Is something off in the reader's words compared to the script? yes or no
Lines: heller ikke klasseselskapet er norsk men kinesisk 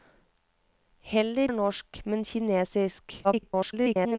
yes